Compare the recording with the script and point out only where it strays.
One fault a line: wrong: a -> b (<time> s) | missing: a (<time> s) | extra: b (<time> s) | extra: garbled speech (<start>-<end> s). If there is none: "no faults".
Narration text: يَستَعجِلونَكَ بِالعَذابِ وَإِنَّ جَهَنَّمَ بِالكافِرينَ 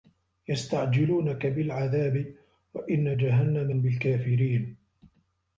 no faults